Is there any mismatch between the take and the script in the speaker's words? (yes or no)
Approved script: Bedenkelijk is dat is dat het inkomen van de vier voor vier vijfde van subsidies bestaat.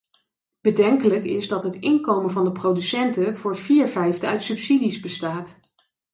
yes